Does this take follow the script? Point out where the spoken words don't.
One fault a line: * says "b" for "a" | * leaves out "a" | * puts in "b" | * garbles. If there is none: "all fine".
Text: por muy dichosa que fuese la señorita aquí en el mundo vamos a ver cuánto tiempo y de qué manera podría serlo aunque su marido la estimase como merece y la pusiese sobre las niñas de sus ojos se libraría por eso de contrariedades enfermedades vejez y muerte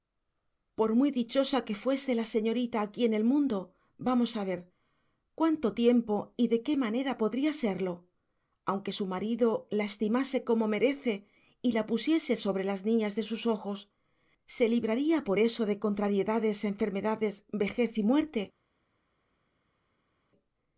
all fine